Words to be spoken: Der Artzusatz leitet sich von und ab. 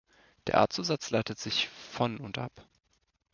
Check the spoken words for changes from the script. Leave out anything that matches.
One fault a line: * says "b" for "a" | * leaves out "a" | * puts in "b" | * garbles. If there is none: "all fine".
all fine